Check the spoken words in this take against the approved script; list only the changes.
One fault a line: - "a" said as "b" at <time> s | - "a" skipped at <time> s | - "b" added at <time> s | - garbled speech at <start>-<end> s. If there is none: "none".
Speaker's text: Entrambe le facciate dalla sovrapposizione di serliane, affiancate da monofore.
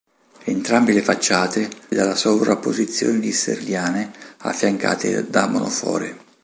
none